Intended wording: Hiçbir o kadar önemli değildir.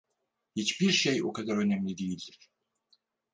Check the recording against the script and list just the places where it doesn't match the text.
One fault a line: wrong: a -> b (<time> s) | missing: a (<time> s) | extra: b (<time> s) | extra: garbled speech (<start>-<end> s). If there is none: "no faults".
extra: şey (0.9 s)